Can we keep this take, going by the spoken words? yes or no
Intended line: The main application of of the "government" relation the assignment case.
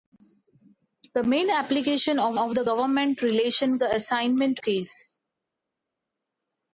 yes